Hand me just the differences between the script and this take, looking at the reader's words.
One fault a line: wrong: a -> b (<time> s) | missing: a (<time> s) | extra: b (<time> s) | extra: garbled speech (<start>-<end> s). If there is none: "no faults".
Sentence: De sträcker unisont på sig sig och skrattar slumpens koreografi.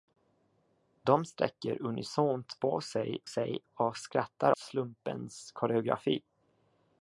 no faults